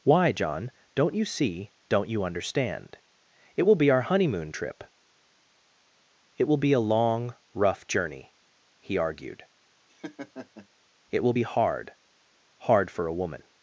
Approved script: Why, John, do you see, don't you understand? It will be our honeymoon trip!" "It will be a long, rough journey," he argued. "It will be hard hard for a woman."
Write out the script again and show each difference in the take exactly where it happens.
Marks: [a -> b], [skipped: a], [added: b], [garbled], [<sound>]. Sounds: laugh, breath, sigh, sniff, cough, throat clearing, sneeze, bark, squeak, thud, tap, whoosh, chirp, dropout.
Why, John, [do -> don't] you see, don't you understand? It will be our honeymoon trip!" "It will be a long, rough journey," he argued. [laugh] "It will be hard hard for a woman."